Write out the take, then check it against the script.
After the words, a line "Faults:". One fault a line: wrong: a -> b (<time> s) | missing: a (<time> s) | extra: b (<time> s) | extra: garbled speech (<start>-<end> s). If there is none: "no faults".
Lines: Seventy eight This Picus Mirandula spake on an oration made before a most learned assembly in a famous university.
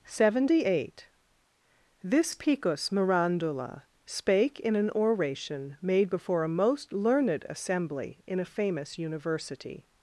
Seventy eight This Picus Mirandula spake in an oration made before a most learned assembly in a famous university.
Faults:
wrong: on -> in (4.6 s)